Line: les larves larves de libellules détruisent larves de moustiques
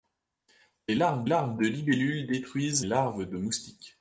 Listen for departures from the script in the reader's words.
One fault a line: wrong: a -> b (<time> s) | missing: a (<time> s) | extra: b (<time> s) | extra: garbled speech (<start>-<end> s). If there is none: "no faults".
no faults